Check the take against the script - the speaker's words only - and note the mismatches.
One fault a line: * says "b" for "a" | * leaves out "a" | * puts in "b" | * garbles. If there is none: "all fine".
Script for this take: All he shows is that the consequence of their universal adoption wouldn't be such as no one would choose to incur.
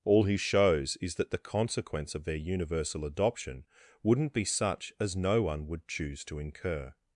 all fine